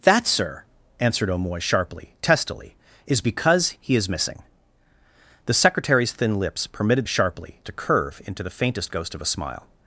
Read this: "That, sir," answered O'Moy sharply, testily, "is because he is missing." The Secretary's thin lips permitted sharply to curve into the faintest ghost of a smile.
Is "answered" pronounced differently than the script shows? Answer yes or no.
no